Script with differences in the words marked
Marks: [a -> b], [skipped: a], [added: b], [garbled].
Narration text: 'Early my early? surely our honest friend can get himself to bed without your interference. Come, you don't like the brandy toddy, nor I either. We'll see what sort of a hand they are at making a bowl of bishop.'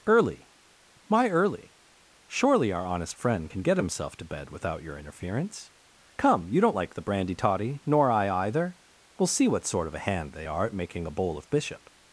'Early my early? surely our honest friend can get himself to bed without your interference. Come, you don't like the brandy toddy, nor I either. We'll see what sort of a hand they are at making a bowl of bishop.'